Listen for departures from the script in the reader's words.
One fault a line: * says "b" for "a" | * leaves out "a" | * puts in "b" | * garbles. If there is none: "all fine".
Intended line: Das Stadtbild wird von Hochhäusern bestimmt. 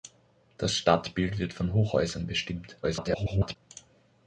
* garbles